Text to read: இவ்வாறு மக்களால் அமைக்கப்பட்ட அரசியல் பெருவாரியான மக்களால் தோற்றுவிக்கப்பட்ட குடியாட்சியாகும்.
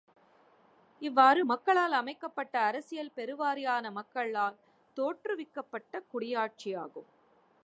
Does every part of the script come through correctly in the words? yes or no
yes